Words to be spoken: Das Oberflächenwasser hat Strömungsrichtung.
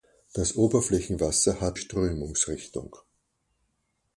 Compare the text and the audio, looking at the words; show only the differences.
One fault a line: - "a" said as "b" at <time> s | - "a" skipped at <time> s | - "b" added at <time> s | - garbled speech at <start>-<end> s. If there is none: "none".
none